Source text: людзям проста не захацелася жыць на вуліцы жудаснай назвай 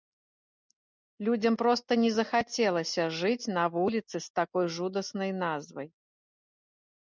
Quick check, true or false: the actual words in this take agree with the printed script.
false